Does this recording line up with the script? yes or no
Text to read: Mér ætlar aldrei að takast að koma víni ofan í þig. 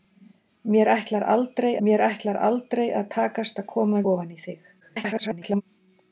no